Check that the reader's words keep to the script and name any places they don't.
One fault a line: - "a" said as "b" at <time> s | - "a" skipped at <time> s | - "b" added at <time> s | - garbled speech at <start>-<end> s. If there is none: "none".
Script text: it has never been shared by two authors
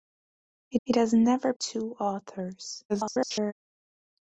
- "it" added at 0.9 s
- "been shared by" skipped at 1.5 s
- garbled speech at 2.9-3.5 s